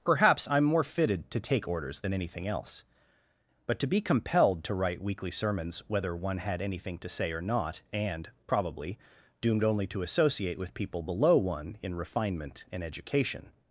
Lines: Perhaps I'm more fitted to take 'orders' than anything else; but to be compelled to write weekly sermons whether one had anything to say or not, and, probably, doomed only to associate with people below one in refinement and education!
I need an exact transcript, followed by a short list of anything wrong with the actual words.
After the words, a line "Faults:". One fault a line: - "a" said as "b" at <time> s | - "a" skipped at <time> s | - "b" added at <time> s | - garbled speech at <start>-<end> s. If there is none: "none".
Perhaps I'm more fitted to take 'orders' than anything else; but to be compelled to write weekly sermons whether one had anything to say or not, and, probably, doomed only to associate with people below one in refinement and education!
Faults:
none